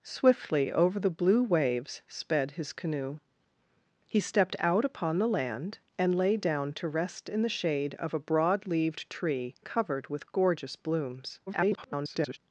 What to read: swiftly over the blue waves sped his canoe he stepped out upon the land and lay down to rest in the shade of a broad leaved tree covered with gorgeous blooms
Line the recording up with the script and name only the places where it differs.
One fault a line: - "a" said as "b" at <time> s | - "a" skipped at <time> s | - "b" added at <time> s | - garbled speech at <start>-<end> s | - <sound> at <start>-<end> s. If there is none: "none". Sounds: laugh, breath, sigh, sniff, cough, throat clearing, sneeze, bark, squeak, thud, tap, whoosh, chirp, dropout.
- garbled speech at 11.5-12.4 s